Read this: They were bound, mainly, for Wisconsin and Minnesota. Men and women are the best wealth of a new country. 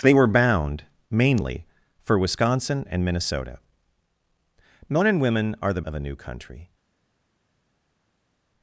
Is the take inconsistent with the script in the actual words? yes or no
yes